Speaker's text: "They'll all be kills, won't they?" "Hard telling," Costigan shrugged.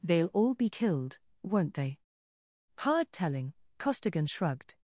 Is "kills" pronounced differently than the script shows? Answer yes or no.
yes